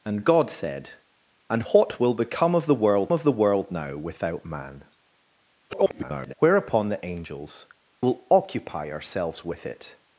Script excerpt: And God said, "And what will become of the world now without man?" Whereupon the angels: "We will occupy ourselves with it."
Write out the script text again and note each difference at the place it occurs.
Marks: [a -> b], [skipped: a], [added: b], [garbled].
And God said, "And what will become of the world [added: of the world] now without man?" [garbled] Whereupon the angels: [skipped: "We] will occupy ourselves with it."